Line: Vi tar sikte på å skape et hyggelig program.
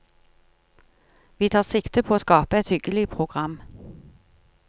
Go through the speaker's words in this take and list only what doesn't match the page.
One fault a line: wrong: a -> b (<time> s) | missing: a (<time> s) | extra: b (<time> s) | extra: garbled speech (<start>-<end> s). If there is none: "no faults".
no faults